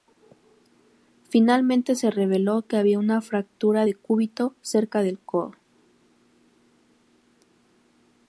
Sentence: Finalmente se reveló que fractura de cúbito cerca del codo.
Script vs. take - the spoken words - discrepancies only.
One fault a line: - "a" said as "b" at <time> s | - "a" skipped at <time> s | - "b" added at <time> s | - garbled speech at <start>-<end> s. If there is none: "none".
- "había una" added at 2.8 s